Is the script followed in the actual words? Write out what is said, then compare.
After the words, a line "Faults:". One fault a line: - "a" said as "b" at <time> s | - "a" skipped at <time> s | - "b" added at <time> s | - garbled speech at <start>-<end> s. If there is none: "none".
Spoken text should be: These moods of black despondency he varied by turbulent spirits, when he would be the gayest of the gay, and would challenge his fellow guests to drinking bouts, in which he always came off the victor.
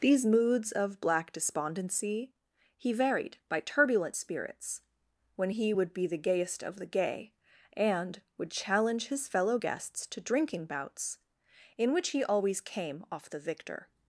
These moods of black despondency he varied by turbulent spirits, when he would be the gayest of the gay, and would challenge his fellow guests to drinking bouts, in which he always came off the victor.
Faults:
none